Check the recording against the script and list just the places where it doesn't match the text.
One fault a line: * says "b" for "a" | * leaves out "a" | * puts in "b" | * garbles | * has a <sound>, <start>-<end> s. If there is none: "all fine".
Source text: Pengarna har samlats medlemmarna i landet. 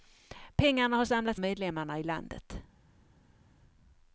all fine